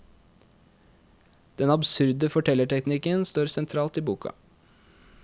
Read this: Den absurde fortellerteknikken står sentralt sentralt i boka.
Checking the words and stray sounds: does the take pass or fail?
fail